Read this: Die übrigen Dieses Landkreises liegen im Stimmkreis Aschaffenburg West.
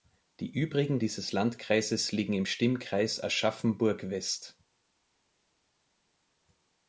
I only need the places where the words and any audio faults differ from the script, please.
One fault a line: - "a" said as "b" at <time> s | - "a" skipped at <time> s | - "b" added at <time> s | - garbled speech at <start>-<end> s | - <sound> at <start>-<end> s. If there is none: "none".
none